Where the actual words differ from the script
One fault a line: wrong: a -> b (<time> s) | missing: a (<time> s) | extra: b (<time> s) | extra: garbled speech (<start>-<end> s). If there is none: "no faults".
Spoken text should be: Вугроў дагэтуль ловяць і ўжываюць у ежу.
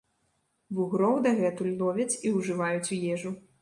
no faults